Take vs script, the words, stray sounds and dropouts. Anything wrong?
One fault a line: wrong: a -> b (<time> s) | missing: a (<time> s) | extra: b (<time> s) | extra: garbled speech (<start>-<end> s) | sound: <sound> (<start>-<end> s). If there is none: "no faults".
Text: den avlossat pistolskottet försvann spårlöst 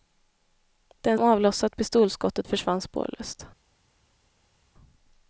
no faults